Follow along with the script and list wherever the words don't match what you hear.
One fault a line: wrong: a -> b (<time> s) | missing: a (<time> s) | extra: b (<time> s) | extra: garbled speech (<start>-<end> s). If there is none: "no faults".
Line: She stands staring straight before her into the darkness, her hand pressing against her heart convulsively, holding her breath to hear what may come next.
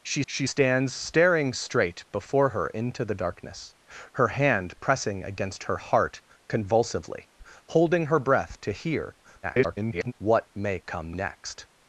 extra: she (0.3 s)
extra: garbled speech (9.4-10.1 s)